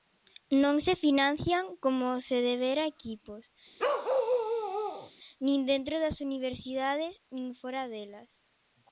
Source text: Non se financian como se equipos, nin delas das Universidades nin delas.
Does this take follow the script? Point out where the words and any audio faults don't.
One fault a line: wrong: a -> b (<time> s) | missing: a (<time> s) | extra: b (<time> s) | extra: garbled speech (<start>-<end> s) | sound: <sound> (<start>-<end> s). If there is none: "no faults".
extra: debera (2.5 s)
sound: bark (3.8-5.1 s)
wrong: delas -> dentro (5.7 s)
extra: fóra (7.6 s)